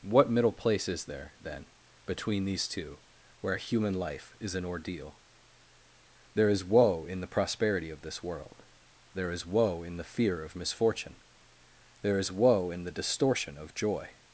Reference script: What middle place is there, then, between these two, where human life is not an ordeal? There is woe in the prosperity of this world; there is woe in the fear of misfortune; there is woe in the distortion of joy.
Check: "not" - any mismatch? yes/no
yes